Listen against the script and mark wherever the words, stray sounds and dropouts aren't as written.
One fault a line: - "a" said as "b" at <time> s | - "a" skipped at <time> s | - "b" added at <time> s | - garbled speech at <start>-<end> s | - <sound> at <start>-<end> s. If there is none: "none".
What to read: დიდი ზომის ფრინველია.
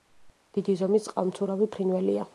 - "წყალმცურავი" added at 1.1 s